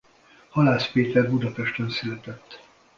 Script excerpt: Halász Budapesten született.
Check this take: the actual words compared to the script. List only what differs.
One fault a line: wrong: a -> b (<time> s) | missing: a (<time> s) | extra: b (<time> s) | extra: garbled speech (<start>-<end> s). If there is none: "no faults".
extra: Péter (0.9 s)